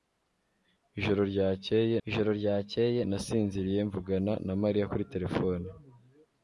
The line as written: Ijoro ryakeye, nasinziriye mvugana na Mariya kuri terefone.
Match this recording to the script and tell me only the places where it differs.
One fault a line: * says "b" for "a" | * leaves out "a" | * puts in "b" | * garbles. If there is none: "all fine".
* puts in "ijoro ryakeye"